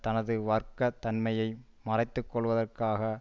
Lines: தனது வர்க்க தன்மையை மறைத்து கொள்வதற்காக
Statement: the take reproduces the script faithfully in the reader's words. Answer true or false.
true